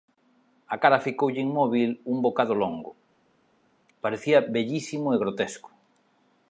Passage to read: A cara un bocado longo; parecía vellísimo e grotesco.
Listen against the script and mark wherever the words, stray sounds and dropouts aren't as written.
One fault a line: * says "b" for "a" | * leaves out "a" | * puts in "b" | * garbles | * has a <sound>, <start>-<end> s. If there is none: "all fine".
* puts in "ficoulle inmóbil"